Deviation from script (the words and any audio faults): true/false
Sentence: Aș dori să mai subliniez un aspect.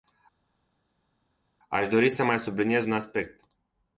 false